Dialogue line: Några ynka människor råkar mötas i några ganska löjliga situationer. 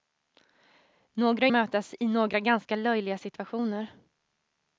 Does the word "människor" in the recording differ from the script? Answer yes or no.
yes